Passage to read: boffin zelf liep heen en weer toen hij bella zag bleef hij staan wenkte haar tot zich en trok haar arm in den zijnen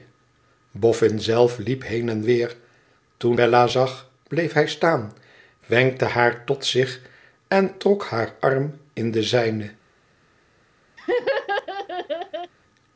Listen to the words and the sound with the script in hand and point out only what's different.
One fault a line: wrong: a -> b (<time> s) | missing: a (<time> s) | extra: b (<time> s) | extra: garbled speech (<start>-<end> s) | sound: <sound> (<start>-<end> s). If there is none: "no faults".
missing: hij (3.4 s)
sound: laugh (11.0-12.5 s)